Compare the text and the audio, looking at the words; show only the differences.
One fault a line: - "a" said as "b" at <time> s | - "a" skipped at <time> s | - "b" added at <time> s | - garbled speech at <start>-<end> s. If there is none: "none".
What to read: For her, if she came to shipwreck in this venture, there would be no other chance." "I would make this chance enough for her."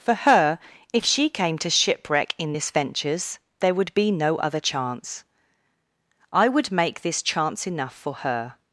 - "venture" said as "ventures" at 2.7 s